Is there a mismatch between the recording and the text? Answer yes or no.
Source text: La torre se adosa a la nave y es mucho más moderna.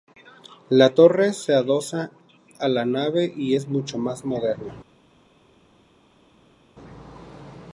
no